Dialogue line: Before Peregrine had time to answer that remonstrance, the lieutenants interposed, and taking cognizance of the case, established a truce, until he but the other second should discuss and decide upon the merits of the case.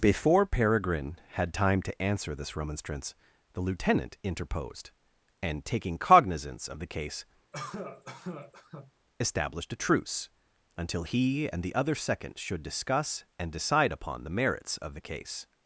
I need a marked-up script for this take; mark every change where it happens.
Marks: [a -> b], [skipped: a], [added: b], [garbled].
Before Peregrine had time to answer [that -> this] remonstrance, the [lieutenants -> lieutenant] interposed, and taking cognizance of the case, established a truce, until he [but -> and] the other second should discuss and decide upon the merits of the case.